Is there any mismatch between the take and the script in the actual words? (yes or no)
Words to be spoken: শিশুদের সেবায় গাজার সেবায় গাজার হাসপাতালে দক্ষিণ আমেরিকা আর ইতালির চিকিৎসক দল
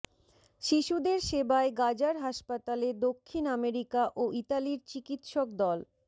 yes